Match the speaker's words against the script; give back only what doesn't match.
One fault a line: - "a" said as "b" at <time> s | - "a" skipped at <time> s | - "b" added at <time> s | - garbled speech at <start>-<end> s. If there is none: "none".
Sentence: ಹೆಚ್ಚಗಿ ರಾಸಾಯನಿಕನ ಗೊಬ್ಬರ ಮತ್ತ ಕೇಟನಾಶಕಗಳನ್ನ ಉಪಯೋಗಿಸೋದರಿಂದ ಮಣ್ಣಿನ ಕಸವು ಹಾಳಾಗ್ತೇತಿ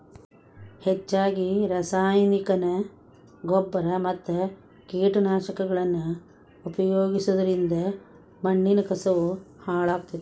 none